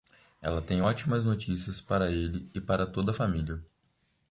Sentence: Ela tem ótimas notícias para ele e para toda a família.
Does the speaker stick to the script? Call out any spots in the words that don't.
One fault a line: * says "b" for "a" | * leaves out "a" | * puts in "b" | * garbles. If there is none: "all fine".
all fine